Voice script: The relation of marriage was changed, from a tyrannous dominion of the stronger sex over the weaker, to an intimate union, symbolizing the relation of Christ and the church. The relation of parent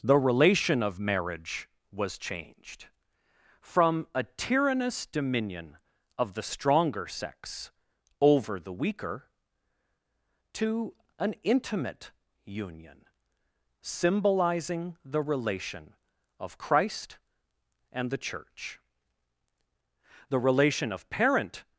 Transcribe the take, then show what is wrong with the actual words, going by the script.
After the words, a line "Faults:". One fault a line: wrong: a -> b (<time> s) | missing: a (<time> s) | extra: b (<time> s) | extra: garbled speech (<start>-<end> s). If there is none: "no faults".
The relation of marriage was changed, from a tyrannous dominion of the stronger sex over the weaker, to an intimate union, symbolizing the relation of Christ and the church. The relation of parent
Faults:
no faults